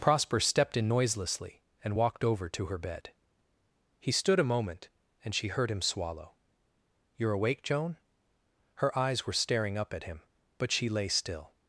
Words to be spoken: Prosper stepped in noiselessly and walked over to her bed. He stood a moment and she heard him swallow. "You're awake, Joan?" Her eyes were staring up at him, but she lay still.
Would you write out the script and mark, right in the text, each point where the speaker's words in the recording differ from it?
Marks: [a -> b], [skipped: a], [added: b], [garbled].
Prosper stepped in noiselessly and walked over to her bed. He stood a moment and she heard him swallow. "You're awake, Joan?" Her eyes were staring up at him, but she lay still.